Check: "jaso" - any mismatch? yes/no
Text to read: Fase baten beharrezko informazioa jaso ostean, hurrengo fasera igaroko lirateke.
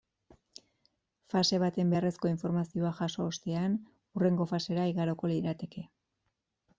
no